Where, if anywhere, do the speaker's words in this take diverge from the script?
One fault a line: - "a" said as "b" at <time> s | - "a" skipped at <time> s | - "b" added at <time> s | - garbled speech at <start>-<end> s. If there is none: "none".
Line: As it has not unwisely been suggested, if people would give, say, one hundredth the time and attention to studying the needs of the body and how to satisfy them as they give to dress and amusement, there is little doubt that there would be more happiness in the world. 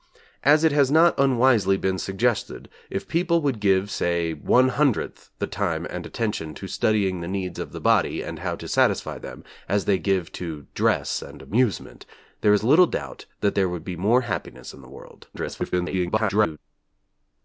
- garbled speech at 15.3-16.6 s